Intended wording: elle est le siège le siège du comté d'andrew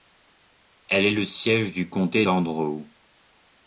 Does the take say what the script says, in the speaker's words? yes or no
no